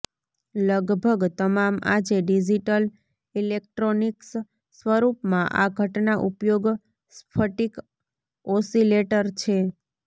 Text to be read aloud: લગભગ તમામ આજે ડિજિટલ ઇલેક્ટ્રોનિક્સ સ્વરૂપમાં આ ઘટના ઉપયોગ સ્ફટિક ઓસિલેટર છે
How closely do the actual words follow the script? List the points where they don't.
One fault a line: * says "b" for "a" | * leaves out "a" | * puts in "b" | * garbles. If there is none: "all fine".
all fine